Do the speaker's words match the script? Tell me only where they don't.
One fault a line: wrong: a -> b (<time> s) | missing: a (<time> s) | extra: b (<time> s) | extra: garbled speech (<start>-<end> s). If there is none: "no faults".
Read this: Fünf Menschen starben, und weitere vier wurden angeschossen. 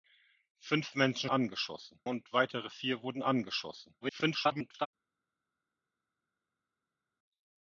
wrong: starben -> angeschossen (1.3 s)
extra: garbled speech (4.0-4.9 s)